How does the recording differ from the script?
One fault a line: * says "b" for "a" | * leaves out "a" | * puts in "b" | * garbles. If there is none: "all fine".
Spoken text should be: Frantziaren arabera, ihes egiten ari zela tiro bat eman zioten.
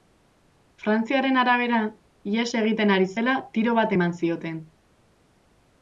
all fine